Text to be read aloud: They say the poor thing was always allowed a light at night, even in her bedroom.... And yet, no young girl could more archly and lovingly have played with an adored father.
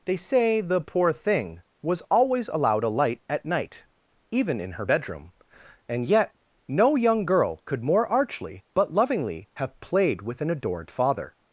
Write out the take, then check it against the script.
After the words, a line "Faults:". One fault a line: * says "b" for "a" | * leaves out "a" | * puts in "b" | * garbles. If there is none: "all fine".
They say the poor thing was always allowed a light at night, even in her bedroom.... And yet, no young girl could more archly but lovingly have played with an adored father.
Faults:
* says "but" for "and"